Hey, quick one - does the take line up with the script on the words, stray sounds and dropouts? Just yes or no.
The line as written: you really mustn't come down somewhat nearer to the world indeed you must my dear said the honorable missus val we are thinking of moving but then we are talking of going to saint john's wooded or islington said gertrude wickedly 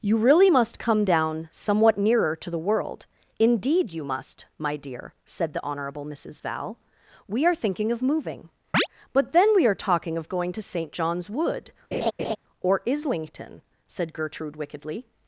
no